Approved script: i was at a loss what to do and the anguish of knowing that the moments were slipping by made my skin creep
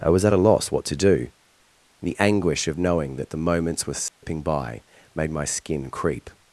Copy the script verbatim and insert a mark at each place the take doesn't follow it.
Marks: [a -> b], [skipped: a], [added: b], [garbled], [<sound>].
i was at a loss what to do [skipped: and] the anguish of knowing that the moments were slipping [dropout] by made my skin creep